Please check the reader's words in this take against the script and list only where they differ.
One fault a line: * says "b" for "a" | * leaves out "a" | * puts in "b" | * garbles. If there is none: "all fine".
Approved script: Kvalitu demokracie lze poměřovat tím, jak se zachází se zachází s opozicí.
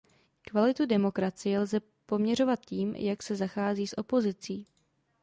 * leaves out "se zachází"